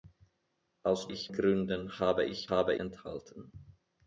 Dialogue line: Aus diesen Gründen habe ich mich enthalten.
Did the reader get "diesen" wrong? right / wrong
wrong